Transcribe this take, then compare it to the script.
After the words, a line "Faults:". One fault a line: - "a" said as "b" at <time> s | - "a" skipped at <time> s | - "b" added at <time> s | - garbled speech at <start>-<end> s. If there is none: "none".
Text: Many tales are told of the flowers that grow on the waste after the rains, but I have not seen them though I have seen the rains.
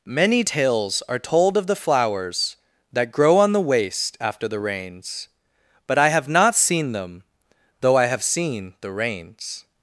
Many tales are told of the flowers that grow on the waste after the rains, but I have not seen them though I have seen the rains.
Faults:
none